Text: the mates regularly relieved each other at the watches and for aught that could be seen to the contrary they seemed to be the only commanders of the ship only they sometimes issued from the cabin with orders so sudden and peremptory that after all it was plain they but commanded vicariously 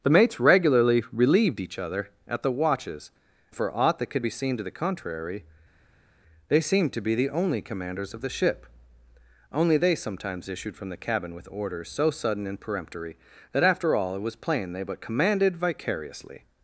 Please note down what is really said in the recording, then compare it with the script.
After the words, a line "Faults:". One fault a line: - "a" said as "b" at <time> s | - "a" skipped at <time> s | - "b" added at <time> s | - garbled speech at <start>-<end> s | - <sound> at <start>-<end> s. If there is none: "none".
the mates regularly relieved each other at the watches for aught that could be seen to the contrary they seemed to be the only commanders of the ship only they sometimes issued from the cabin with orders so sudden and peremptory that after all it was plain they but commanded vicariously
Faults:
- "and" skipped at 3.1 s